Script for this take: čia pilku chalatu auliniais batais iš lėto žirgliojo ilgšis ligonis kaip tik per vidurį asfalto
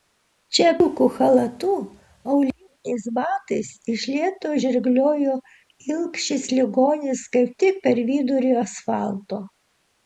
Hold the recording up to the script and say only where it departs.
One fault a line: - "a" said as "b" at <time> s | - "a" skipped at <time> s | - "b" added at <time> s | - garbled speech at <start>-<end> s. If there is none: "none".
none